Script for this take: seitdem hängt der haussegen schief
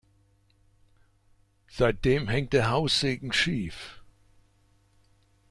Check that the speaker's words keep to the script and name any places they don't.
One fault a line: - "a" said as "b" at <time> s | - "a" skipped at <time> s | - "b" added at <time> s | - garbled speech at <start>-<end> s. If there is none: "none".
none